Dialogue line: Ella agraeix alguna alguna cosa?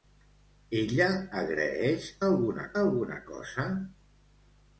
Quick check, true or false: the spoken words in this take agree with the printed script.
true